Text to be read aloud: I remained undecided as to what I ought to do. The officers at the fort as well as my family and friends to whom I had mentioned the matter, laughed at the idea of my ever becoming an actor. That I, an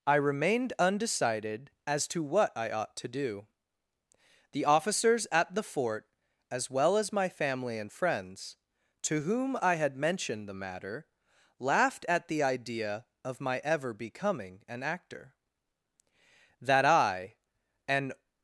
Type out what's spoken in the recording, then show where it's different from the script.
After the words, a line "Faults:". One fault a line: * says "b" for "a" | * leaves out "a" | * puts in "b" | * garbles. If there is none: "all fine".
I remained undecided as to what I ought to do. The officers at the fort as well as my family and friends to whom I had mentioned the matter, laughed at the idea of my ever becoming an actor. That I, an
Faults:
all fine